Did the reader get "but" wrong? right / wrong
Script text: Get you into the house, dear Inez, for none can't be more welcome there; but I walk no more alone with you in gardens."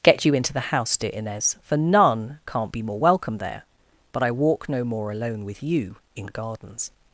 right